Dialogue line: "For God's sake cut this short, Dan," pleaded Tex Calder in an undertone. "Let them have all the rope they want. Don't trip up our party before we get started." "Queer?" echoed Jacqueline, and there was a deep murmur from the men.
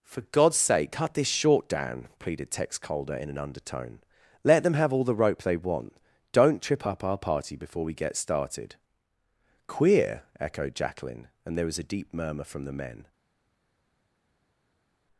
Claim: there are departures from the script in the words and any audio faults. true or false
false